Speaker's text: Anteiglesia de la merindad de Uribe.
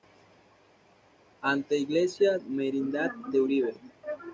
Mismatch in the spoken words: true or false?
true